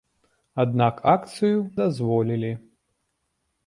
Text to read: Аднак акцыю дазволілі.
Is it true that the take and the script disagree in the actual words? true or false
false